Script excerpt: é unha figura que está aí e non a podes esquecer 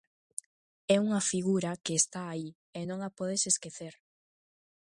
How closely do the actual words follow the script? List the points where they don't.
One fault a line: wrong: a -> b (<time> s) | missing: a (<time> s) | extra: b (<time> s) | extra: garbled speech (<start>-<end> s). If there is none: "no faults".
no faults